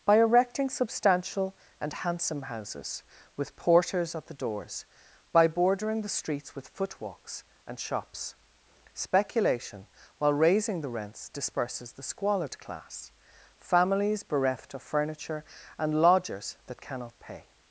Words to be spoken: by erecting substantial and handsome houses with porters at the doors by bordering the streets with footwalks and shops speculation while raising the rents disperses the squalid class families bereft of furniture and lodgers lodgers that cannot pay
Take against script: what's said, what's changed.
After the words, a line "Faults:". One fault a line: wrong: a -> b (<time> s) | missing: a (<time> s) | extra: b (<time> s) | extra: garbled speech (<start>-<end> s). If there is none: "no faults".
by erecting substantial and handsome houses with porters at the doors by bordering the streets with footwalks and shops speculation while raising the rents disperses the squalid class families bereft of furniture and lodgers that cannot pay
Faults:
missing: lodgers (16.6 s)